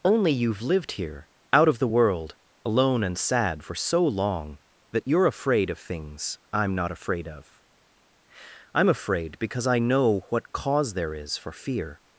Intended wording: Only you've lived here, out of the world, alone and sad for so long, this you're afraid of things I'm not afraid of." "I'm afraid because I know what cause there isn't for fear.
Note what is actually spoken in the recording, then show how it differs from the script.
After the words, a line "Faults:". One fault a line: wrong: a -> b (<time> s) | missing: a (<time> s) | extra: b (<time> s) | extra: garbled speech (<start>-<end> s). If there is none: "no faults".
Only you've lived here, out of the world, alone and sad for so long, that you're afraid of things I'm not afraid of." "I'm afraid because I know what cause there is for fear.
Faults:
wrong: this -> that (4.9 s)
wrong: isn't -> is (11.1 s)